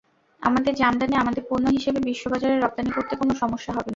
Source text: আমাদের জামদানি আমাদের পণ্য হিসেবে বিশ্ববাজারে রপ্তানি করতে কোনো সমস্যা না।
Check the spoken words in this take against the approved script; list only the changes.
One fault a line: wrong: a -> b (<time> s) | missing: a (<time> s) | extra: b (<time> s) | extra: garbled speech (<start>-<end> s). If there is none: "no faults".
extra: হবে (3.7 s)